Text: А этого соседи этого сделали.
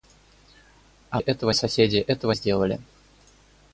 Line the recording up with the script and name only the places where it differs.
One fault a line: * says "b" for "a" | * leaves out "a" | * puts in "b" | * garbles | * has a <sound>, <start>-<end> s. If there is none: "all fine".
all fine